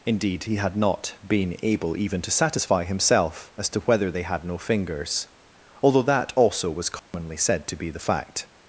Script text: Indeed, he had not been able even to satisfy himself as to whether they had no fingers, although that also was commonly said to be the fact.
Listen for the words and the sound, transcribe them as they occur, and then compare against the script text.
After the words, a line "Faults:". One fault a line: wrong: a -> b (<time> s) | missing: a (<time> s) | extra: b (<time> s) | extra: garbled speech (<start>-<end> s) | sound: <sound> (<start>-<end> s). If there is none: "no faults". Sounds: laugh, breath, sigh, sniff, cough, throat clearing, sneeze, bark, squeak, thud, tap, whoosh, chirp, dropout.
Indeed, he had not been able even to satisfy himself as to whether they had no fingers, although that also was commonly said to be the fact.
Faults:
sound: dropout (7.0-7.1 s)